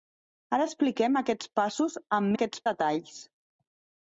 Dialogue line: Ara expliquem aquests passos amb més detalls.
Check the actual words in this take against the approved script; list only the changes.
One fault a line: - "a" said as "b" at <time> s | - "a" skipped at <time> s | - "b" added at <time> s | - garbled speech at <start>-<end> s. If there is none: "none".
- "més" said as "aquests" at 2.3 s